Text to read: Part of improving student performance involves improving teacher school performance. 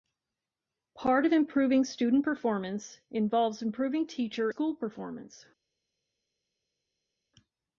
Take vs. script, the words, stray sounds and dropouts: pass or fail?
pass